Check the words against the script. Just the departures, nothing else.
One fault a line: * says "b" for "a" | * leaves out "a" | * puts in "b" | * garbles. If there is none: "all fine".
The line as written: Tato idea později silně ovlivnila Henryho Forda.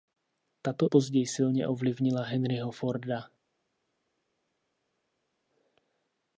* leaves out "idea"